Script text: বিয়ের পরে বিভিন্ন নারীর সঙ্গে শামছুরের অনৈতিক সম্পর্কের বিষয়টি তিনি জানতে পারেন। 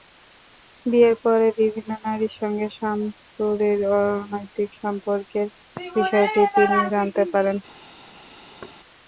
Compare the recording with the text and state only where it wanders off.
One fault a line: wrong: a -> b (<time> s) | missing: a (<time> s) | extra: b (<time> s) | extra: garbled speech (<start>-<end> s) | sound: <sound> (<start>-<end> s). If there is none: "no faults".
sound: thud (8.6-8.8 s)